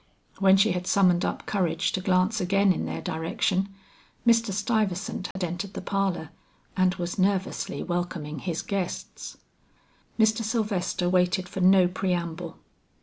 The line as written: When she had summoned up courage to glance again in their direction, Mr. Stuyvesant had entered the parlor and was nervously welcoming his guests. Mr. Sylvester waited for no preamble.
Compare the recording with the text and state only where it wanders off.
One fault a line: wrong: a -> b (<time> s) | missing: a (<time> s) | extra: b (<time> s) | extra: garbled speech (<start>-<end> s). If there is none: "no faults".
no faults